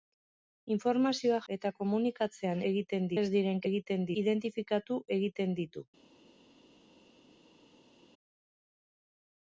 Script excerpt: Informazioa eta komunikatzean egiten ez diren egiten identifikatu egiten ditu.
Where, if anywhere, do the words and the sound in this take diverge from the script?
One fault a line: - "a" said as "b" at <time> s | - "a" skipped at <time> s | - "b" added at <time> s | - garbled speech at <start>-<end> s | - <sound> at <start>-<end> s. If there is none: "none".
none